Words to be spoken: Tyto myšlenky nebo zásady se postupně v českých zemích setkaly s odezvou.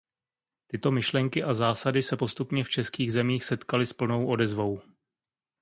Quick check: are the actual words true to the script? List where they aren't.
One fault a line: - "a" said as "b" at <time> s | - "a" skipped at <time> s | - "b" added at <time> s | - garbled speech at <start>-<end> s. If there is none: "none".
- "nebo" said as "a" at 1.4 s
- "plnou" added at 3.9 s